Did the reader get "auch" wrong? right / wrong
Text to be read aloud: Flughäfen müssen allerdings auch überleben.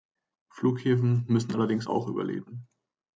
right